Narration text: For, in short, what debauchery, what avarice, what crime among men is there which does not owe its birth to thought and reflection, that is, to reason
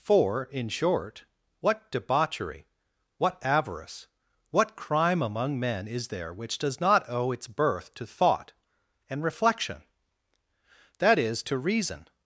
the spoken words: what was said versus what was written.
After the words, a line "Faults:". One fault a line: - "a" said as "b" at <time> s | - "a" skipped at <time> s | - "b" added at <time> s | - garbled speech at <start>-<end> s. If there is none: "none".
For, in short, what debauchery, what avarice, what crime among men is there which does not owe its birth to thought and reflection, that is, to reason
Faults:
none